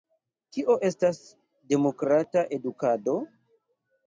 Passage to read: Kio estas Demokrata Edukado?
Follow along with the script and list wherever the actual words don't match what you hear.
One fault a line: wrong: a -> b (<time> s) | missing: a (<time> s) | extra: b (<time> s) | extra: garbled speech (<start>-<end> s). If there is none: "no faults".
no faults